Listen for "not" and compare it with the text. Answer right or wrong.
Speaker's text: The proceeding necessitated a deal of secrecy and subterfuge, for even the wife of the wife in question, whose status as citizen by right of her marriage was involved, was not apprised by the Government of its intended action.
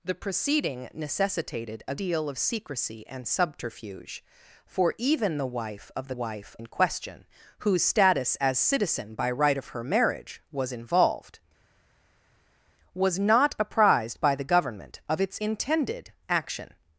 right